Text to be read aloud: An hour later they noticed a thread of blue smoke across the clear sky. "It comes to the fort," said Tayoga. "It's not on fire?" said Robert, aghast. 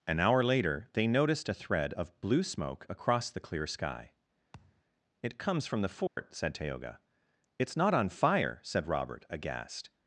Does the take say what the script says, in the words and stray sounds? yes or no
no